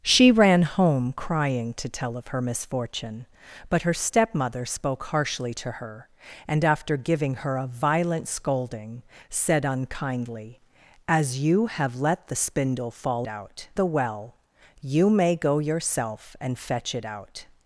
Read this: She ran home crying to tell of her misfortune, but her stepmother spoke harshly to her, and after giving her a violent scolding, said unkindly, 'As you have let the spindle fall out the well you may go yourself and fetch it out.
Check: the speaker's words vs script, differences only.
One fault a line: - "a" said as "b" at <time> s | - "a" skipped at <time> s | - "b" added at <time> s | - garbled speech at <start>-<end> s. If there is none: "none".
none